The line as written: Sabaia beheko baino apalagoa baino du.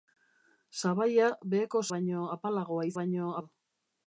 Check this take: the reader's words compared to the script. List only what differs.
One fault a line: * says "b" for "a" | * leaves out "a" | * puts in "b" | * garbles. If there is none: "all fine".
all fine